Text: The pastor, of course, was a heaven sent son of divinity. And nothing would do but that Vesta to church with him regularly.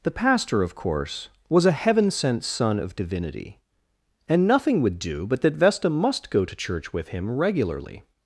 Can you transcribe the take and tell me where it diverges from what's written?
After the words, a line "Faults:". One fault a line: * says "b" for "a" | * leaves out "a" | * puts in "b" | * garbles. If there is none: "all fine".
The pastor, of course, was a heaven sent son of divinity. And nothing would do but that Vesta must go to church with him regularly.
Faults:
* puts in "must go"